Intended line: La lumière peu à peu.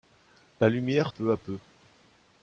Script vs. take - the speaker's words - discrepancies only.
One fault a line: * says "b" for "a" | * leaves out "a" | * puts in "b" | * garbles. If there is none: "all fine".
all fine